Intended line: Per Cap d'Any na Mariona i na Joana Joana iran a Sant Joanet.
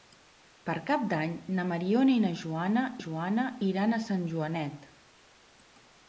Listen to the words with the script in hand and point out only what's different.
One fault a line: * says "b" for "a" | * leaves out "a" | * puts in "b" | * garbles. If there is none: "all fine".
all fine